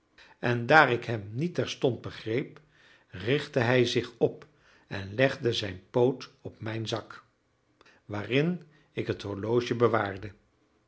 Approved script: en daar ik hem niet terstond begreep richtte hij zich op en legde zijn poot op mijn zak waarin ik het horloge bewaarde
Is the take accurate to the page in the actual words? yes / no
yes